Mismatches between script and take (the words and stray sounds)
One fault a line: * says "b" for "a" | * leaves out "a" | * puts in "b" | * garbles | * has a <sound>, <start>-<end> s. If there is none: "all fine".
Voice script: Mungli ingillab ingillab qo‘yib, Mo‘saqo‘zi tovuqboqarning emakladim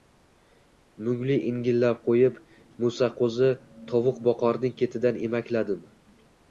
* leaves out "ingillab"
* puts in "ketidan"